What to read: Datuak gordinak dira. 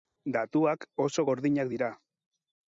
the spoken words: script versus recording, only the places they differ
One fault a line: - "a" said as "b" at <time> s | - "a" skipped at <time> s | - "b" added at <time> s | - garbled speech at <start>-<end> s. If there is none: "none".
- "oso" added at 1.1 s